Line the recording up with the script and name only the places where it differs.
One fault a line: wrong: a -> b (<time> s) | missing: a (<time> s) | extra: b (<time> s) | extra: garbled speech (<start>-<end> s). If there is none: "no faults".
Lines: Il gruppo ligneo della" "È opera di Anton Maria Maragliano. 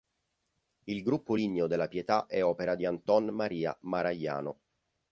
extra: Pietà (1.9 s)